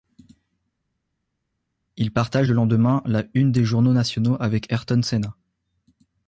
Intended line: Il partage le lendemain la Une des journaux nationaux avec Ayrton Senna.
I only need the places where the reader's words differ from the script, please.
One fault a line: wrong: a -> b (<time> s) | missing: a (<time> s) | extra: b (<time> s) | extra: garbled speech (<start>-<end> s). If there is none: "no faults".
no faults